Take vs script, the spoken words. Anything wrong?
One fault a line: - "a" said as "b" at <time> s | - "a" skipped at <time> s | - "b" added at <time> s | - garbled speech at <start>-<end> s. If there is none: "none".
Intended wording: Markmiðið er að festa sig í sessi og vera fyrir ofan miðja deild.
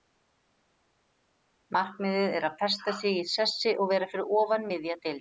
none